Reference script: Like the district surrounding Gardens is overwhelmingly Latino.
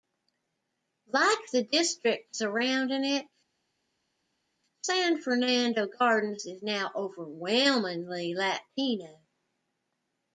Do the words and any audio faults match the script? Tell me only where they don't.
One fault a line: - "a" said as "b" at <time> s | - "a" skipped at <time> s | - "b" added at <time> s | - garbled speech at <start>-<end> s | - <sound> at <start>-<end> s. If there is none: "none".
- "it San Fernando" added at 3.0 s
- "now" added at 6.6 s